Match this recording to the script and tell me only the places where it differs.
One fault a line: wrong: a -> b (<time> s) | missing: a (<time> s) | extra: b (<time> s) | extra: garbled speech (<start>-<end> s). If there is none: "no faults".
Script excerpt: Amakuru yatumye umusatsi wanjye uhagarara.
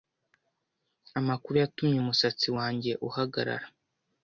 no faults